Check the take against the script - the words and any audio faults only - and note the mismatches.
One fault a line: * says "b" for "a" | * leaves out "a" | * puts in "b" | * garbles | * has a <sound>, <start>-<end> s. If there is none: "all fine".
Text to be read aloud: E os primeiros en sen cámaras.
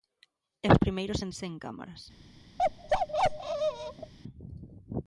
* has a bark, 2.6-4.1 s